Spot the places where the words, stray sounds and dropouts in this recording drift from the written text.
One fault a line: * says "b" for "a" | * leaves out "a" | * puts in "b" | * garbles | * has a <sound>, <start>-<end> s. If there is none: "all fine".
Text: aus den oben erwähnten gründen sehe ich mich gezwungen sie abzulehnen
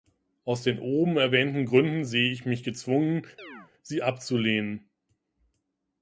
* has a chirp, 3.4-3.7 s